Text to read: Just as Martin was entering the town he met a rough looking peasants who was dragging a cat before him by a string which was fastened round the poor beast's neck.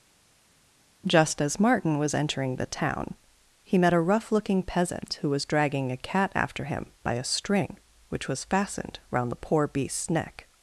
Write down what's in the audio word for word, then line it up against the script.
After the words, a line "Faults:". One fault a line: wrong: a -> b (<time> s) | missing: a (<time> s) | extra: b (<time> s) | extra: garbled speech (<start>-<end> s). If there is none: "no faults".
Just as Martin was entering the town he met a rough looking peasant who was dragging a cat after him by a string which was fastened round the poor beast's neck.
Faults:
wrong: peasants -> peasant (4.6 s)
wrong: before -> after (6.3 s)